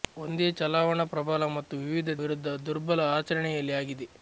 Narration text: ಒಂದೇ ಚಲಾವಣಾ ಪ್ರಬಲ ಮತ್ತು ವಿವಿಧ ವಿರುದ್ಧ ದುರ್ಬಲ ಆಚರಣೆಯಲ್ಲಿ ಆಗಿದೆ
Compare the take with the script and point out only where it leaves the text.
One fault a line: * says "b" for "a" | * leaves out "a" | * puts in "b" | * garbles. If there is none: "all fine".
all fine